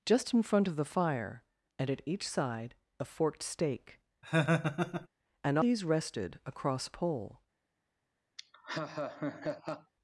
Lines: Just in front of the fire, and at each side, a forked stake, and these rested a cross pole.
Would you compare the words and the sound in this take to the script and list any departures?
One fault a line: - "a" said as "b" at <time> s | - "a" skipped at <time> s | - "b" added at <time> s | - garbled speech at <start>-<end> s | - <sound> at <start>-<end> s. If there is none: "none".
- laugh at 4.2-5.1 s
- laugh at 8.4-9.9 s